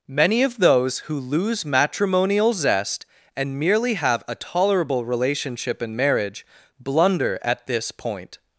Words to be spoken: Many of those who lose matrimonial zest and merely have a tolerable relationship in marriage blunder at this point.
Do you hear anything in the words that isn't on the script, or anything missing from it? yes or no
no